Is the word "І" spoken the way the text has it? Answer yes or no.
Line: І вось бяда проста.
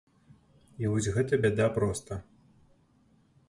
yes